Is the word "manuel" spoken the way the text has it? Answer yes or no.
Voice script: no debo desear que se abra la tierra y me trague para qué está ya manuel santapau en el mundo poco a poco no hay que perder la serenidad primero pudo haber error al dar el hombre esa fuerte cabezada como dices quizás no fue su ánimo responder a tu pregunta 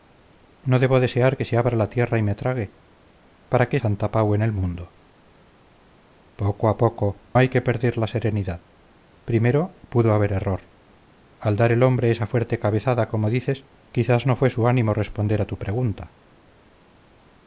no